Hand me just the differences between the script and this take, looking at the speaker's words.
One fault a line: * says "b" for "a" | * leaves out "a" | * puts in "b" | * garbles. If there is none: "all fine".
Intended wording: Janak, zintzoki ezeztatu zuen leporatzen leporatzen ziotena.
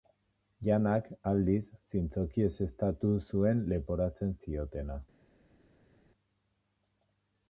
* puts in "aldiz"
* leaves out "leporatzen"